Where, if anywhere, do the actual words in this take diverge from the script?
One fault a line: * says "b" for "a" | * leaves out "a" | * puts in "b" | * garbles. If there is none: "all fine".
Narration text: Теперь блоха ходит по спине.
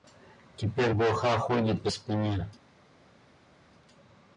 all fine